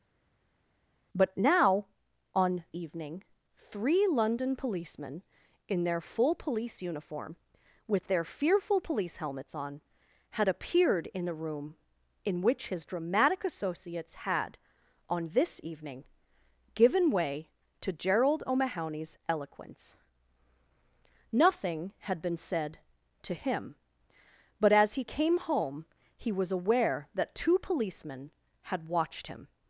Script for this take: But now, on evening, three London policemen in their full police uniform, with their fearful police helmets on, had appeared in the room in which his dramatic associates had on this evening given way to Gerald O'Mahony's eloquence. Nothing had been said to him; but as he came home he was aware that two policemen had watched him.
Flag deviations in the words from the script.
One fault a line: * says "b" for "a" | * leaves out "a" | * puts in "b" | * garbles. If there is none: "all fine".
all fine